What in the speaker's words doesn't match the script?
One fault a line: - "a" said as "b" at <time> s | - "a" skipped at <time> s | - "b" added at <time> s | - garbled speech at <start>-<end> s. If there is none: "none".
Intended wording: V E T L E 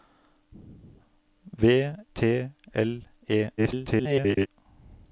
- "E" skipped at 1.9 s
- garbled speech at 3.6-4.5 s